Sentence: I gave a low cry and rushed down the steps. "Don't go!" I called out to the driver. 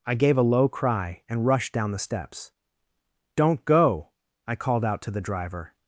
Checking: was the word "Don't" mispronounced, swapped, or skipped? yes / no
no